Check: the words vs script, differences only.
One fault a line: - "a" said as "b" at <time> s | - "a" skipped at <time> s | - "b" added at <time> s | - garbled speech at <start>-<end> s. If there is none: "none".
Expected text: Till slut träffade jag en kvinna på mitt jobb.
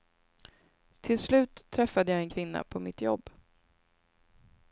none